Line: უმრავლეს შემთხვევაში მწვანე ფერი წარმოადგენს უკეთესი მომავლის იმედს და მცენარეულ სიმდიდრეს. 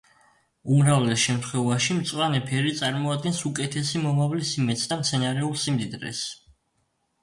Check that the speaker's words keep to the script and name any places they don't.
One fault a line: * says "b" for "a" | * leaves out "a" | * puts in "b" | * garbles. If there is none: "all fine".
all fine